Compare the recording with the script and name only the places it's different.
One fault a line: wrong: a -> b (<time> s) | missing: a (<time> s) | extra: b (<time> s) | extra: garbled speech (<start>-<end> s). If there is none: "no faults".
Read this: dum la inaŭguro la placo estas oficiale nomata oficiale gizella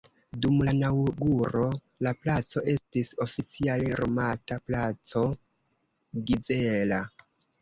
wrong: estas -> estis (2.7 s)
wrong: oficiale -> placo (4.7 s)